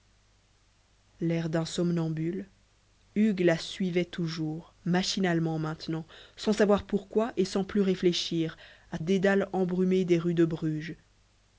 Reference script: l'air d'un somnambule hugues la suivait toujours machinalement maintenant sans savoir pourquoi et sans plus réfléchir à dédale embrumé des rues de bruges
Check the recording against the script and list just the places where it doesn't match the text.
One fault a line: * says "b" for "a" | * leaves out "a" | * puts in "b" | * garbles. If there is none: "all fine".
all fine